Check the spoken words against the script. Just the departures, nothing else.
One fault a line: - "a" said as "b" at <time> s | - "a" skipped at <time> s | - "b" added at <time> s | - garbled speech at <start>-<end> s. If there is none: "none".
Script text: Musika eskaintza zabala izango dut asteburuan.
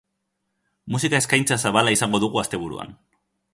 - "dut" said as "dugu" at 2.3 s